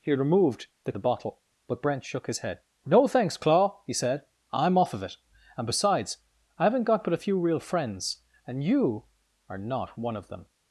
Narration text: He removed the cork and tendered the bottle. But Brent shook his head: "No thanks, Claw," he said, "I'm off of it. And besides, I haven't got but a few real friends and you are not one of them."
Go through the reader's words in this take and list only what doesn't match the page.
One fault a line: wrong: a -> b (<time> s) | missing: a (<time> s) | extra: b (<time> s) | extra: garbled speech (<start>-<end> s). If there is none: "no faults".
missing: cork and tendered (0.9 s)